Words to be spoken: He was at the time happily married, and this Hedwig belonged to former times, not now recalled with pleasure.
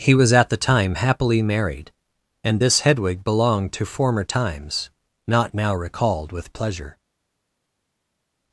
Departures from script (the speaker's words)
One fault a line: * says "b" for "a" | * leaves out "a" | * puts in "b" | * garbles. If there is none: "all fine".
all fine